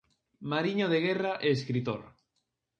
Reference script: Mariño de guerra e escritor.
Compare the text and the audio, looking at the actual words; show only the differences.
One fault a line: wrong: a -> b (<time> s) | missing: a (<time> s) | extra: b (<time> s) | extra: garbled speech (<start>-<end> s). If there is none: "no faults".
no faults